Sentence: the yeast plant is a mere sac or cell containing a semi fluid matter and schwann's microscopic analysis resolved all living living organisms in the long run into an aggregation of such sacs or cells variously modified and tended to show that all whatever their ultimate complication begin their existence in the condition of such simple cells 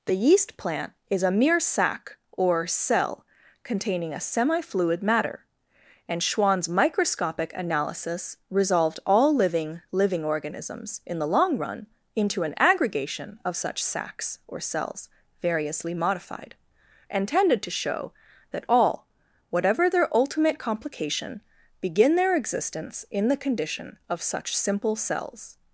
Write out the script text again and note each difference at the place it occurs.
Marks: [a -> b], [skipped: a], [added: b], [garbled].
the yeast plant is a mere sac or cell containing a semi fluid matter and schwann's microscopic analysis resolved all living living organisms in the long run into an aggregation of such sacs or cells variously modified and tended to show that all whatever their ultimate complication begin their existence in the condition of such simple cells